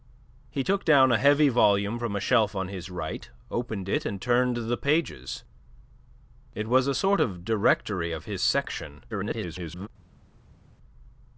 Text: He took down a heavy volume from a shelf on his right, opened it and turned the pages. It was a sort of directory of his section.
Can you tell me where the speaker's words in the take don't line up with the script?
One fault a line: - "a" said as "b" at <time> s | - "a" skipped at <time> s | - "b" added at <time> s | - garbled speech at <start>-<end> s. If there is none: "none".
- garbled speech at 9.1-9.9 s